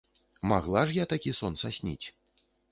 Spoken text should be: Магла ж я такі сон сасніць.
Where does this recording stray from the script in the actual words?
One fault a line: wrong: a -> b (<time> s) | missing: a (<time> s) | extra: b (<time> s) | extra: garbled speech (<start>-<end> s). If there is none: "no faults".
no faults